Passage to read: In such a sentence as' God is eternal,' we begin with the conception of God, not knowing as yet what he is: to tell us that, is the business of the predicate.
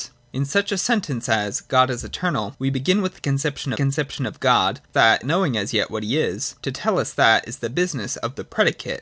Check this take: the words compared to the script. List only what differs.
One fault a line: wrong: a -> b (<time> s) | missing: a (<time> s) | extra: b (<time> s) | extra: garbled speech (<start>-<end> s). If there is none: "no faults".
extra: conception (3.7 s)
wrong: not -> that (4.9 s)